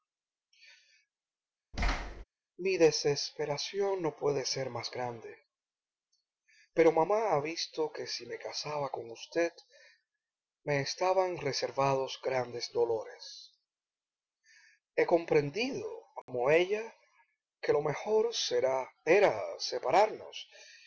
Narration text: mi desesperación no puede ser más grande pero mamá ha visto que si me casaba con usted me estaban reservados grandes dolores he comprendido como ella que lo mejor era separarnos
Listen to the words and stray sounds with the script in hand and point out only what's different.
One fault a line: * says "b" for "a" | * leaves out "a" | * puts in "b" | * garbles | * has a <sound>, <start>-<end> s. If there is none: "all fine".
* has a thud, 1.7-2.2 s
* has a dropout, 16.2-16.3 s